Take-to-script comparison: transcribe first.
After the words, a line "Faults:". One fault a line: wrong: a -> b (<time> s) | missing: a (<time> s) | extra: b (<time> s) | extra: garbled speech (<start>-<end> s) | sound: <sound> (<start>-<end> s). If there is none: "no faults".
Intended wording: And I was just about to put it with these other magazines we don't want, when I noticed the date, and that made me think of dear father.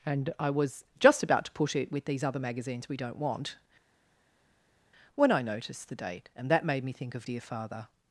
And I was just about to put it with these other magazines we don't want, when I noticed the date, and that made me think of dear father.
Faults:
no faults